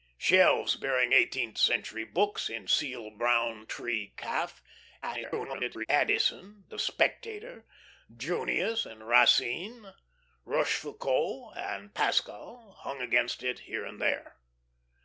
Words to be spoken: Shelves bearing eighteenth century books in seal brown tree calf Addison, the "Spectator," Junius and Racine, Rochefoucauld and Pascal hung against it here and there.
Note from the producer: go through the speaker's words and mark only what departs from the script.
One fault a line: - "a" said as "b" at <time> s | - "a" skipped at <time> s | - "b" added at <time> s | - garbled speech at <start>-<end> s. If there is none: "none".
- garbled speech at 5.0-5.9 s